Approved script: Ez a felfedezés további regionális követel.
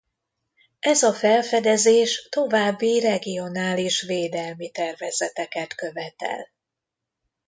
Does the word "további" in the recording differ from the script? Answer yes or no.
no